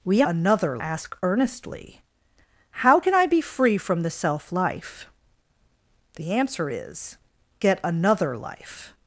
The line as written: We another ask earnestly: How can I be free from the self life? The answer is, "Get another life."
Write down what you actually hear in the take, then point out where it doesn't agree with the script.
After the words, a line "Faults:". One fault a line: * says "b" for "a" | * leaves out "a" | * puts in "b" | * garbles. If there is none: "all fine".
We another ask earnestly: How can I be free from the self life? The answer is, "Get another life."
Faults:
all fine